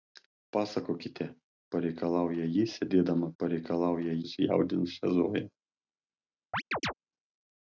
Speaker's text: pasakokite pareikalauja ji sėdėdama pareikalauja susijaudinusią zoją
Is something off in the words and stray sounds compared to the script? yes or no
yes